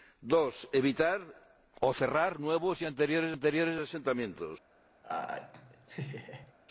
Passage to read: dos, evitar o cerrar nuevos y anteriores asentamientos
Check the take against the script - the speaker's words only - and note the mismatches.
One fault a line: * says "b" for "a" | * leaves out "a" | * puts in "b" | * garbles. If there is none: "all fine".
* puts in "anteriores"